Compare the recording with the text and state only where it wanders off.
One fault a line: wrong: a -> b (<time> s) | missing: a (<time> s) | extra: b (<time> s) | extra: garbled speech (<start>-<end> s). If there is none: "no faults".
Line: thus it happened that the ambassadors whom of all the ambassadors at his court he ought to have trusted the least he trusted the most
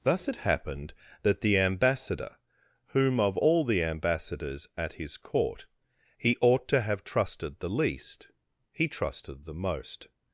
wrong: ambassadors -> ambassador (1.6 s)